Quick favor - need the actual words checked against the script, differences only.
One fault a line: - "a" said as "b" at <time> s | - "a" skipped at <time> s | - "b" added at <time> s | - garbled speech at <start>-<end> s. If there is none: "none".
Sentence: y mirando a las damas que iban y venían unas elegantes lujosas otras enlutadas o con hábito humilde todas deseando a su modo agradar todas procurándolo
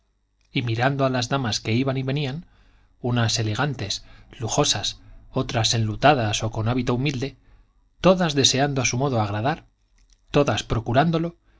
none